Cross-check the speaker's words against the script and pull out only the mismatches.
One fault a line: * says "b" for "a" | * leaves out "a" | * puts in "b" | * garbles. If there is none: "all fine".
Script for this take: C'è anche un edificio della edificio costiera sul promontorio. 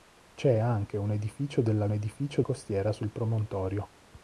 all fine